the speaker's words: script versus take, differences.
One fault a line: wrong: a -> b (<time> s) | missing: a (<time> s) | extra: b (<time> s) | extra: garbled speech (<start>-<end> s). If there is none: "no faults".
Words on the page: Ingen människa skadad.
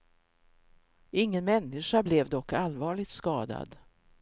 extra: blev dock allvarligt (2.0 s)